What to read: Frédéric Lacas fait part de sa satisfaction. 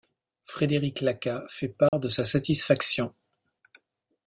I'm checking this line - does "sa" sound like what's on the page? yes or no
yes